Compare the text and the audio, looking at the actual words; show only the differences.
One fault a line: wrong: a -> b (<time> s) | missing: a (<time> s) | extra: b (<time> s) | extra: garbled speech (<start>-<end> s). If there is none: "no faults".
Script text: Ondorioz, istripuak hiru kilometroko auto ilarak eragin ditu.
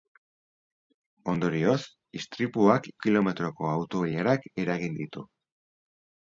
missing: hiru (2.9 s)